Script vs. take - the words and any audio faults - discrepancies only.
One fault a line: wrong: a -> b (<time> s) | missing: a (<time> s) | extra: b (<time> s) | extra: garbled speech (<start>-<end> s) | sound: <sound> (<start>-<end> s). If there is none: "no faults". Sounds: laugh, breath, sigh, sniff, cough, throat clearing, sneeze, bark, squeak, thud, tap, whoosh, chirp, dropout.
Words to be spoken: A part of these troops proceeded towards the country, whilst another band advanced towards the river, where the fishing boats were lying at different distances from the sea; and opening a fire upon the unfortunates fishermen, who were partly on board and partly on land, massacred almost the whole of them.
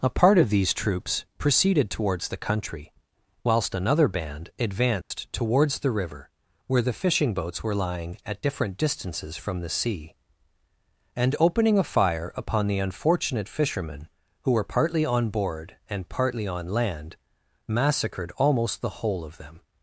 sound: dropout (5.0-5.1 s)
wrong: unfortunates -> unfortunate (12.8 s)